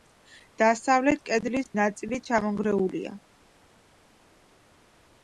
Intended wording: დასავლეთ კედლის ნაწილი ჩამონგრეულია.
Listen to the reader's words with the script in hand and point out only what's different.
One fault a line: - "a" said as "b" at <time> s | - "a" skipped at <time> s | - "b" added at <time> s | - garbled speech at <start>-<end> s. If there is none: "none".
none